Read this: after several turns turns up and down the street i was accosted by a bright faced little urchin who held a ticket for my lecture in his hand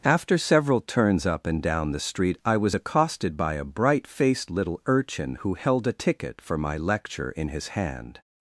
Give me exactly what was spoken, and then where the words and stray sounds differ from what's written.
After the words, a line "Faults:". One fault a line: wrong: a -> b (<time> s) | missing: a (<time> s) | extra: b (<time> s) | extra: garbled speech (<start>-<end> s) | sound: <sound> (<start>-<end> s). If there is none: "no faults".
after several turns up and down the street i was accosted by a bright faced little urchin who held a ticket for my lecture in his hand
Faults:
missing: turns (1.3 s)